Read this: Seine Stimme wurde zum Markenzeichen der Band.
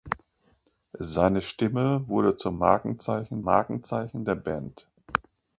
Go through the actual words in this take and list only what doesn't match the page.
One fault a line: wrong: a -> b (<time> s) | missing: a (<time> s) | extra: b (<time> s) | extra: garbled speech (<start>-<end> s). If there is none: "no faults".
extra: Markenzeichen (3.4 s)